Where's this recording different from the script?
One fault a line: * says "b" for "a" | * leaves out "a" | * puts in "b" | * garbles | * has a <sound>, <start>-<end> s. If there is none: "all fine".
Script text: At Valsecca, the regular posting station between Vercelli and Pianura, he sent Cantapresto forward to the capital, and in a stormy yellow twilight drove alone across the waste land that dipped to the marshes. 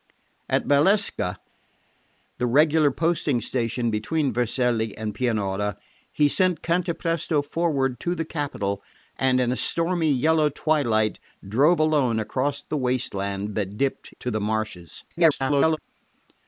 * garbles